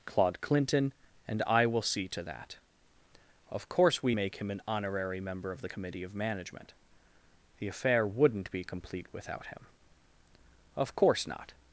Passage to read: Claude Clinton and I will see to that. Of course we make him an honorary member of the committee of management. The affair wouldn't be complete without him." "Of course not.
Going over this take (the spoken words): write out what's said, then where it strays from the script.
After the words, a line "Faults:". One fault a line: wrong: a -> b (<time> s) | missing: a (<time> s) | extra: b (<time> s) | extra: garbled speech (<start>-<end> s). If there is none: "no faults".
Claude Clinton and I will see to that. Of course we make him an honorary member of the committee of management. The affair wouldn't be complete without him." "Of course not.
Faults:
no faults